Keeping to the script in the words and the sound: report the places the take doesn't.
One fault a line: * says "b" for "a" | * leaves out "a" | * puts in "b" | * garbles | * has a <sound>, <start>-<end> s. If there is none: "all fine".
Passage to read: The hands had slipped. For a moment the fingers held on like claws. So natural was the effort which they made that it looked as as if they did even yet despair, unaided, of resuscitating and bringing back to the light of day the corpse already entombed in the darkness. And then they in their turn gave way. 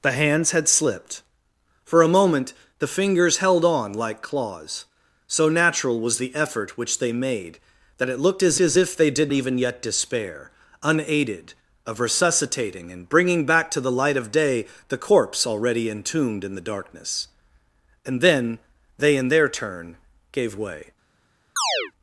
* has a chirp, 21.6-21.9 s